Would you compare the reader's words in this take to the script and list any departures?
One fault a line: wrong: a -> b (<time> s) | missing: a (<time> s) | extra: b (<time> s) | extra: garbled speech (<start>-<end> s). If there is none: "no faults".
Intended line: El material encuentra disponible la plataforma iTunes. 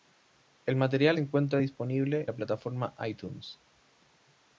no faults